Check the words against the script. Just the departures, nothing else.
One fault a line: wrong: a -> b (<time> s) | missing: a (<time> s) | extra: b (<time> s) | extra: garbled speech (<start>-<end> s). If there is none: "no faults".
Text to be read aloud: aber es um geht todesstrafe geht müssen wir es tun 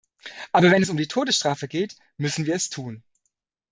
extra: wenn (0.7 s)
wrong: geht -> die (0.9 s)